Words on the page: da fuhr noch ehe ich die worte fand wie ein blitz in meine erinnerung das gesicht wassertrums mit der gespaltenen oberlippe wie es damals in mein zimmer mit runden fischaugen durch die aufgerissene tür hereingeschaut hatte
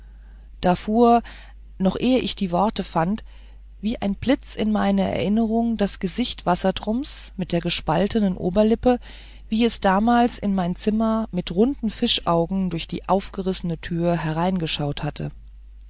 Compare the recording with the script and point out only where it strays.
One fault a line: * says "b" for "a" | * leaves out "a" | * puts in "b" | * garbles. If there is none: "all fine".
all fine